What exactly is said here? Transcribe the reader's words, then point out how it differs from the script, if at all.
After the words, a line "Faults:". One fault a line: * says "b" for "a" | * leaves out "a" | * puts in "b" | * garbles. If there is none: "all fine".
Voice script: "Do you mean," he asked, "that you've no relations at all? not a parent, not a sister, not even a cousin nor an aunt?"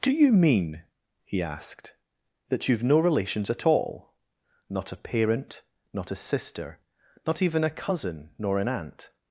"Do you mean," he asked, "that you've no relations at all? not a parent, not a sister, not even a cousin nor an aunt?"
Faults:
all fine